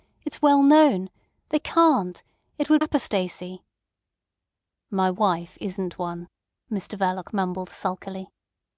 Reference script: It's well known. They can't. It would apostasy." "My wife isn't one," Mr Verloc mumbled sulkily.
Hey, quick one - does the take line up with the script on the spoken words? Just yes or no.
yes